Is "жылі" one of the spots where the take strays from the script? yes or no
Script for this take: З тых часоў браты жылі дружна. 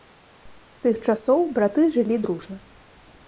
no